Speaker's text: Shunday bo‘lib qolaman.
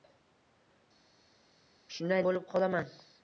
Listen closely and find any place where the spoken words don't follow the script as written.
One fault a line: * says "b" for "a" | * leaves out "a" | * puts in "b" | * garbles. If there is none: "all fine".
all fine